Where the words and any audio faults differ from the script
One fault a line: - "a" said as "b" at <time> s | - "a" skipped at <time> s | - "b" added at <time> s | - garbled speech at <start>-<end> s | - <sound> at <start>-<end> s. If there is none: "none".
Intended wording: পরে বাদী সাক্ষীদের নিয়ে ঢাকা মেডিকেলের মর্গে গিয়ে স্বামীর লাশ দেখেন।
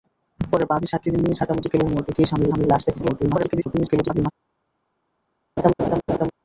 - "স্বামীর" added at 2.5 s
- garbled speech at 3.0-4.3 s
- laugh at 5.6-6.3 s